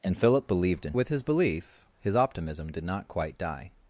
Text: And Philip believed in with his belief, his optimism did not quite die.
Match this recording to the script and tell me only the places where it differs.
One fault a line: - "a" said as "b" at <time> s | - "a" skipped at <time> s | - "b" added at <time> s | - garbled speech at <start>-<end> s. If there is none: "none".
none